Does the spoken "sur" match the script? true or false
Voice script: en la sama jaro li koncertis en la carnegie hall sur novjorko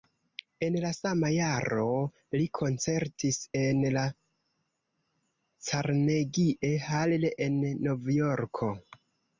false